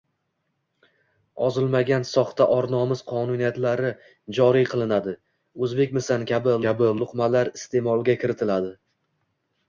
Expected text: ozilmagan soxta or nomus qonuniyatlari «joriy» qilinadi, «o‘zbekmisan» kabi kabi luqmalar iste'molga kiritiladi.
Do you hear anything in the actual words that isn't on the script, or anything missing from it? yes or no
no